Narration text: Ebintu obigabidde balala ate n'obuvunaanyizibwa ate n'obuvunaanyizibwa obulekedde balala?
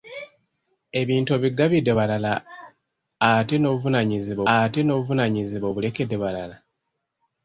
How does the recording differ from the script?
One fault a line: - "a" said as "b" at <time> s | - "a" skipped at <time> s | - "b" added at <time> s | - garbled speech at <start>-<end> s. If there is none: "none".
none